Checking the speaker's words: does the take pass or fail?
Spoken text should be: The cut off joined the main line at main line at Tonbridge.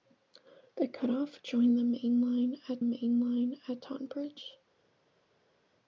pass